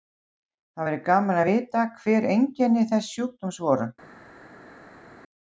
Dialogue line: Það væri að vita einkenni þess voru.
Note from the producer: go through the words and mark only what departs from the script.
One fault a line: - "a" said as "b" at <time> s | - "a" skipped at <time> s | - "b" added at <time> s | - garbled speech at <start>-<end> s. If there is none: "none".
- "gaman" added at 1.1 s
- "hver" added at 2.0 s
- "sjúkdóms" added at 3.1 s